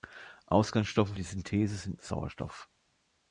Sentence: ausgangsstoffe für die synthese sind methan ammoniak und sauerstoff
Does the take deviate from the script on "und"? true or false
true